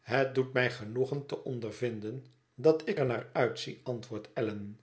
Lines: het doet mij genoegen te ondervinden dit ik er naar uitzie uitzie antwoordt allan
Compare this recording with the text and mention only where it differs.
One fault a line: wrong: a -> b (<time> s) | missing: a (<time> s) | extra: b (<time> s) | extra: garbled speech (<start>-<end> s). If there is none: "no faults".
wrong: dit -> dat (2.5 s)
missing: uitzie (3.8 s)